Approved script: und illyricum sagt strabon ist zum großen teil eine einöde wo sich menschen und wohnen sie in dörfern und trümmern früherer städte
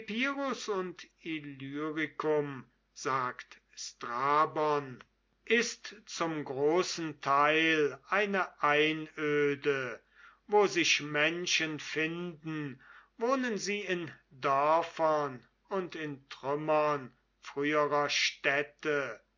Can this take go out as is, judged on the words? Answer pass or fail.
fail